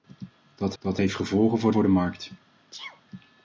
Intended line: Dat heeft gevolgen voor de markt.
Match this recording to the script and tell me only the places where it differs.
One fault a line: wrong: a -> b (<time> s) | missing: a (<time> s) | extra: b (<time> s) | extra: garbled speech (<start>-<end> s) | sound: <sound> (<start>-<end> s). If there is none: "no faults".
extra: dat (0.8 s)
extra: voor (1.7 s)
sound: sneeze (2.7-3.0 s)